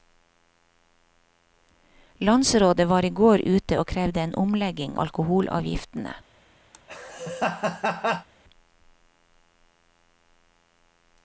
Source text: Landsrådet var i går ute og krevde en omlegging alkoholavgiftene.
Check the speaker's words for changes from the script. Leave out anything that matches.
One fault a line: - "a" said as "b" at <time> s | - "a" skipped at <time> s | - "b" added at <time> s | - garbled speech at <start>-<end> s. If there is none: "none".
none